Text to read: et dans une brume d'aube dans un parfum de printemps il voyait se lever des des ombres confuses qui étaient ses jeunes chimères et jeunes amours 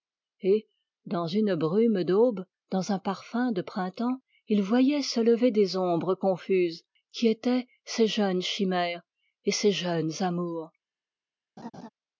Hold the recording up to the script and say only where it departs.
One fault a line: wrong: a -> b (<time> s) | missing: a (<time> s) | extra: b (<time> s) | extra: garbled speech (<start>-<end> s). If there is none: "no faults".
missing: des (5.8 s)
extra: ses (9.5 s)